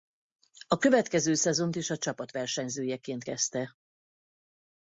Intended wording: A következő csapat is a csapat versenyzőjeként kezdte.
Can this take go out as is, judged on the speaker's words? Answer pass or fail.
fail